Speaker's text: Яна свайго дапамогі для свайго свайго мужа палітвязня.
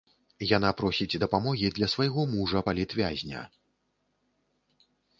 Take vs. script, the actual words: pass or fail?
fail